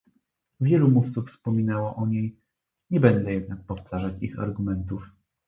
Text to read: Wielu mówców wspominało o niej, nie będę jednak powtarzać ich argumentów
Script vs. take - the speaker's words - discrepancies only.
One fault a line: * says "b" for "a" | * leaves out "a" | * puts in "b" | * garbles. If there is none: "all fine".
all fine